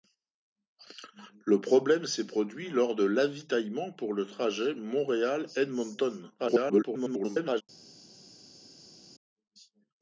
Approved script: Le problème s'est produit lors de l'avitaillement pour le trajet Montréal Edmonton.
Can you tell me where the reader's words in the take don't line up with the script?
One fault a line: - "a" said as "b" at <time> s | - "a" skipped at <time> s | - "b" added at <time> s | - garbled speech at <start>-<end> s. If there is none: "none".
- garbled speech at 6.4-7.6 s